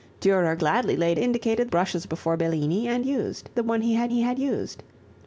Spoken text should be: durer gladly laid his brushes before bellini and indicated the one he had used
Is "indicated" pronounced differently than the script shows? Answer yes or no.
yes